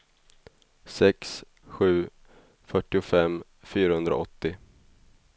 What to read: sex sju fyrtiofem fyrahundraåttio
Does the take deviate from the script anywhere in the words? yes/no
no